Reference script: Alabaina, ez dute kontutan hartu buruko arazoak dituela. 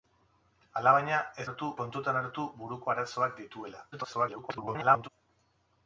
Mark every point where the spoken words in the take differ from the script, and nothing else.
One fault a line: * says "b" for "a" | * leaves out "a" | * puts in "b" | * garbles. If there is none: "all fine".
* says "hartu" for "dute"
* garbles